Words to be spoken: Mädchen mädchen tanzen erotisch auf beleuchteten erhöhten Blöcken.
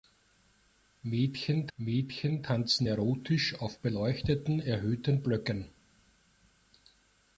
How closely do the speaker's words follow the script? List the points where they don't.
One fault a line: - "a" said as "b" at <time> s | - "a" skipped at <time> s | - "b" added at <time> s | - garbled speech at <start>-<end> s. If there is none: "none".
none